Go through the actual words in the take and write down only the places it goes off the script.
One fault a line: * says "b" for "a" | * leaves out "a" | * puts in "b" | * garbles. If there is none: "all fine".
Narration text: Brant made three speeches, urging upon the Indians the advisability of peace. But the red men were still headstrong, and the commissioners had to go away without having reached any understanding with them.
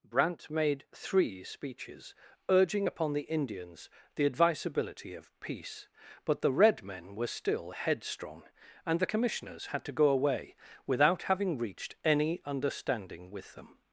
all fine